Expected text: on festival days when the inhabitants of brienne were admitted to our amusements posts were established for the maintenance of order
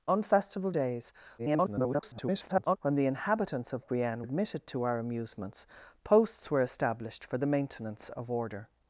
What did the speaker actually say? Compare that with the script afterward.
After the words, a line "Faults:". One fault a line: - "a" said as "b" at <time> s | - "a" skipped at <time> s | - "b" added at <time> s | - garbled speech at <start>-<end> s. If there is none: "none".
on festival days [garbled] when the inhabitants of brienne admitted to our amusements posts were established for the maintenance of order
Faults:
- garbled speech at 1.4-2.8 s
- "were" skipped at 4.2 s